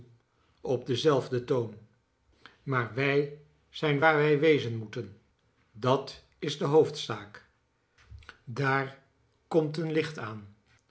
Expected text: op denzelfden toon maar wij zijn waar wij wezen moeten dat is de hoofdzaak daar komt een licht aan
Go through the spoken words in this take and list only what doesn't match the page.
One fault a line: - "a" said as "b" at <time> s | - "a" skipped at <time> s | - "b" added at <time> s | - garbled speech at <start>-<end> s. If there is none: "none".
none